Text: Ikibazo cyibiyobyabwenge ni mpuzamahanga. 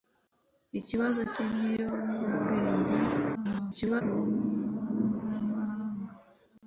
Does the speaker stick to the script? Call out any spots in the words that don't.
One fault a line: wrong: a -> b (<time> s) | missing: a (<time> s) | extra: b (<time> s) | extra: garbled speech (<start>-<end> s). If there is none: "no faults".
extra: garbled speech (3.3-4.0 s)